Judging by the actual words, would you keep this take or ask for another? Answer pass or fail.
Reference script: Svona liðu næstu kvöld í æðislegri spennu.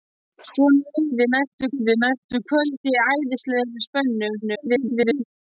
fail